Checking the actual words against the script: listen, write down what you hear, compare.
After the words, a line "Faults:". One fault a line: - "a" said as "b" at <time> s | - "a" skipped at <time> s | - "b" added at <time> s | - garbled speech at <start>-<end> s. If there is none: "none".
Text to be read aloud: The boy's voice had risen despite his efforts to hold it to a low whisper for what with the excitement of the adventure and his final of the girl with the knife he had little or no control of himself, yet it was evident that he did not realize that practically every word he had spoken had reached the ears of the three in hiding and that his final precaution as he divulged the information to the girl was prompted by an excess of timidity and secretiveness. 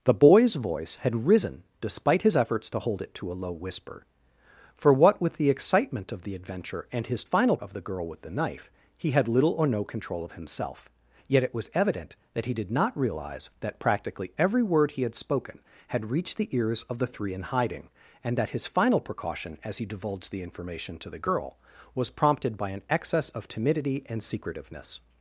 The boy's voice had risen despite his efforts to hold it to a low whisper for what with the excitement of the adventure and his final of the girl with the knife he had little or no control of himself, yet it was evident that he did not realize that practically every word he had spoken had reached the ears of the three in hiding and that his final precaution as he divulged the information to the girl was prompted by an excess of timidity and secretiveness.
Faults:
none